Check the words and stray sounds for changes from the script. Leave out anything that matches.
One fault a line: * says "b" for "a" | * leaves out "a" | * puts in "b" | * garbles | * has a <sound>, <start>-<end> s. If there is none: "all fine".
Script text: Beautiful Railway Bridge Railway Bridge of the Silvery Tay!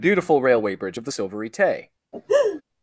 * leaves out "Railway Bridge"
* has a laugh, 2.1-2.6 s